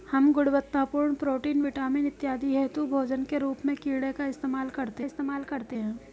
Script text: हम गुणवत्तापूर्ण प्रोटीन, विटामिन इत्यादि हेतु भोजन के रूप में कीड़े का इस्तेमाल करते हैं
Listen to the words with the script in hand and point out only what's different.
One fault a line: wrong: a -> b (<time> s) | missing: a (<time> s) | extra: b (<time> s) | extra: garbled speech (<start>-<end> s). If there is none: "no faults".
extra: इस्तेमाल करते (5.0 s)